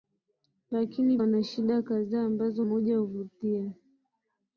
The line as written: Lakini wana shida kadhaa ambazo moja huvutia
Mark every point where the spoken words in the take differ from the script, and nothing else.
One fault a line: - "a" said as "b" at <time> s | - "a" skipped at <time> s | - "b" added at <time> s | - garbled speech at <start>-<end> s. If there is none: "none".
none